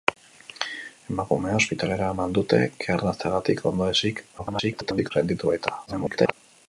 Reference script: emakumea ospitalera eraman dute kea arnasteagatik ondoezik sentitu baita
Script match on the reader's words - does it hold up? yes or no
no